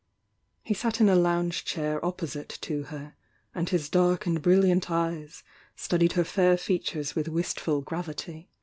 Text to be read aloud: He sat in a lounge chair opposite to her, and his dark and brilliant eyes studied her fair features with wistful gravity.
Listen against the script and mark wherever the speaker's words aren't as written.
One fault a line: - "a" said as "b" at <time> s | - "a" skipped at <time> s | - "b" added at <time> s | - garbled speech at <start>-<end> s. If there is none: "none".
none